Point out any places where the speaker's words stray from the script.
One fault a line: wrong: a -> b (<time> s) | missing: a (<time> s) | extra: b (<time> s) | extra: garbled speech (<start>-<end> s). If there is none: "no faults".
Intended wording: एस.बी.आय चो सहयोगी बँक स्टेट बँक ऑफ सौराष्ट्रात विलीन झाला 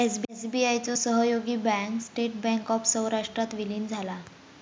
no faults